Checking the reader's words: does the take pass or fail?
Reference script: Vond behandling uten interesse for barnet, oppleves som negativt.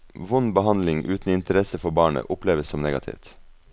pass